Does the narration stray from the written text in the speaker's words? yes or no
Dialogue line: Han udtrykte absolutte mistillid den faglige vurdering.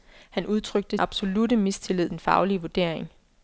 no